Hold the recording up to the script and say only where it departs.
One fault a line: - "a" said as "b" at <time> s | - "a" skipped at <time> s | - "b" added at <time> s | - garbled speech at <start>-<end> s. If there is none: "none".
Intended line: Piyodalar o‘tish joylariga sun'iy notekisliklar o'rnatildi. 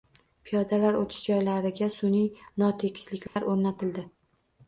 none